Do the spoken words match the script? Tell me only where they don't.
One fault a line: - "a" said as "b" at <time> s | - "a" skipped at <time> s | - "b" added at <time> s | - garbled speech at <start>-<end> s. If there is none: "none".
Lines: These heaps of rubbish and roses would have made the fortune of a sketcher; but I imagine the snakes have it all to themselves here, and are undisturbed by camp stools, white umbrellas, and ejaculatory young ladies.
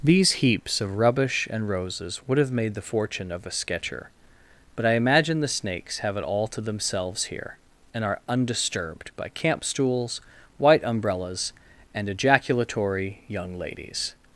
none